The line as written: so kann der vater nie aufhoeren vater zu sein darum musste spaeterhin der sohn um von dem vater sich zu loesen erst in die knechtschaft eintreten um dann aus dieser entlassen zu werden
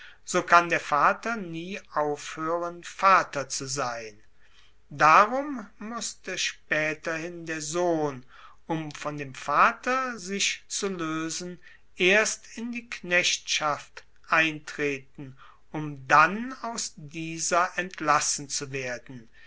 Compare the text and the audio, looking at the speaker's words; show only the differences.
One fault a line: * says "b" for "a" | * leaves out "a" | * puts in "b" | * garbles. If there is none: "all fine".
all fine